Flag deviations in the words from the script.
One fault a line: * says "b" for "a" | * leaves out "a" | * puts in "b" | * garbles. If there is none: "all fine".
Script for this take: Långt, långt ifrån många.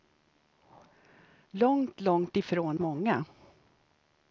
all fine